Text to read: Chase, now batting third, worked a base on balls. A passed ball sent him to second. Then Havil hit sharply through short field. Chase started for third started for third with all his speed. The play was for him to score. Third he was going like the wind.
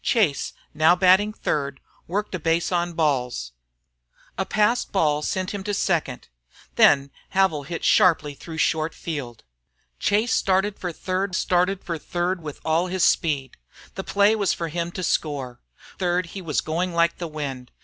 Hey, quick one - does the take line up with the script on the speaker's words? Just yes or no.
yes